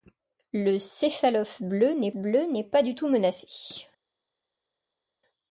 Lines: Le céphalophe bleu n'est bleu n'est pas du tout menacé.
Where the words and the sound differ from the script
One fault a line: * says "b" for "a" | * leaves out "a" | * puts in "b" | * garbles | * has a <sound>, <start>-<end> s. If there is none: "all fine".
all fine